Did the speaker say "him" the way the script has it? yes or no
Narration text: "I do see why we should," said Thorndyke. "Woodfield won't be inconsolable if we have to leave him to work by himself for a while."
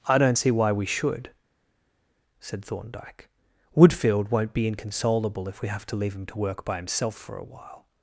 yes